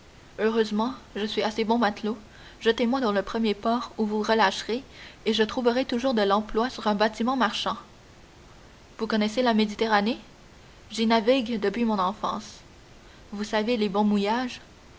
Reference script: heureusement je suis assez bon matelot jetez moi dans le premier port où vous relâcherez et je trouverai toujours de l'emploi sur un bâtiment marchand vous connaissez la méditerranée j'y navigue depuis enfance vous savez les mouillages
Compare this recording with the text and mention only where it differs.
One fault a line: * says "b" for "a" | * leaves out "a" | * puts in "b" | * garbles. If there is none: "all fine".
* puts in "mon"
* puts in "bons"